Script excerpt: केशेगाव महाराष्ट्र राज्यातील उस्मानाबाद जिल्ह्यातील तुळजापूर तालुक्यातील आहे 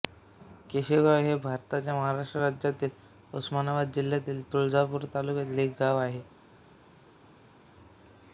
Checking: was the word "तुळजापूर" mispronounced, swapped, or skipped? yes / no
no